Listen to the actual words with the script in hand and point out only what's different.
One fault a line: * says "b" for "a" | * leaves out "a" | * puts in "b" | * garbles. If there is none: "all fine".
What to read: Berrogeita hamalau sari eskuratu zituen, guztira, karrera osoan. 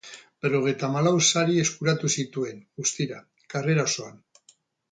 all fine